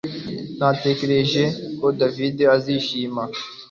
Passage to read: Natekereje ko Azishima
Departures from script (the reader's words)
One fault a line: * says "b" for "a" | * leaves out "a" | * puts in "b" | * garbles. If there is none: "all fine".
* puts in "David"